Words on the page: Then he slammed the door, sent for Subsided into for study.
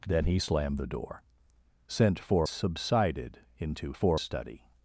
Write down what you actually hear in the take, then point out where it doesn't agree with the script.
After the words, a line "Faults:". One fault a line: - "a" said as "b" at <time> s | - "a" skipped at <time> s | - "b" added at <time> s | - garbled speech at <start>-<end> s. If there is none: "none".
Then he slammed the door, sent for Subsided into for study.
Faults:
none